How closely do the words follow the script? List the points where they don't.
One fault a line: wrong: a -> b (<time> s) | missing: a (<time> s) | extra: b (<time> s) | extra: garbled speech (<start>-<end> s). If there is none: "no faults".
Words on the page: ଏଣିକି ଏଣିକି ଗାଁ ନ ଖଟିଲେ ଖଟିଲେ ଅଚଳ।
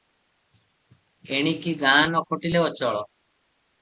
missing: ଏଣିକି (1.7 s)
missing: ଖଟିଲେ (2.6 s)